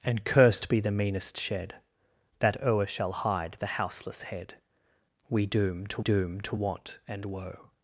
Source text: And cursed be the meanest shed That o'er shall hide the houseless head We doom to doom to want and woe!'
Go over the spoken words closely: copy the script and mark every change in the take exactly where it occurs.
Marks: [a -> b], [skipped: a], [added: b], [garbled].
And cursed be the meanest shed That o'er shall hide the houseless head We doom to doom to want and woe!'